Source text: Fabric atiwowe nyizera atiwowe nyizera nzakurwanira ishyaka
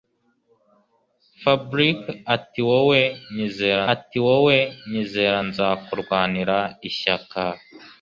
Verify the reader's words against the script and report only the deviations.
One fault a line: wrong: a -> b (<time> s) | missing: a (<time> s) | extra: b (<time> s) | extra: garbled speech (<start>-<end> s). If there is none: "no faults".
no faults